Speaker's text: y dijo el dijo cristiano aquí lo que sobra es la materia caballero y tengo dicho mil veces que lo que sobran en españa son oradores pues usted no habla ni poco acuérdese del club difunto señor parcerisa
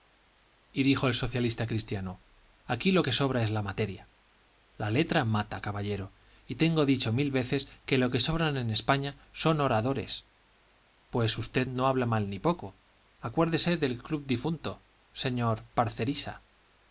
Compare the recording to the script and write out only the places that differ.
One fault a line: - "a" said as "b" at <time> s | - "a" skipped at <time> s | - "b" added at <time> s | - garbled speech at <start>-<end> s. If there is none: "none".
- "dijo" said as "socialista" at 1.1 s
- "la letra mata" added at 4.8 s
- "mal" added at 12.1 s